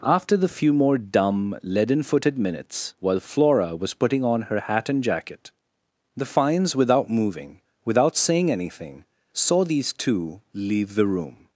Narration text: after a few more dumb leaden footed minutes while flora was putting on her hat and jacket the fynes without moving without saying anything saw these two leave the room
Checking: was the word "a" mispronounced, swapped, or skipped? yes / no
yes